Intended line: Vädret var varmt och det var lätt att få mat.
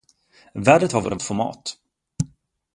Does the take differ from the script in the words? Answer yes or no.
yes